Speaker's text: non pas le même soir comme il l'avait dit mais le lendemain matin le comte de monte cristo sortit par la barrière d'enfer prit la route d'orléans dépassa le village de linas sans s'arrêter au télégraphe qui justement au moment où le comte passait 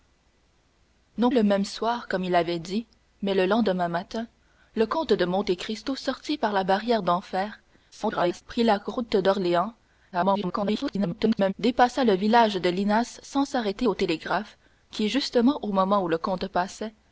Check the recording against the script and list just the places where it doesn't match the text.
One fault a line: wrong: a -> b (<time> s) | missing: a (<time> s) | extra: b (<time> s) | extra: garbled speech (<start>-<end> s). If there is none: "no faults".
missing: pas (1.3 s)
extra: garbled speech (7.9-8.4 s)
extra: garbled speech (10.1-11.5 s)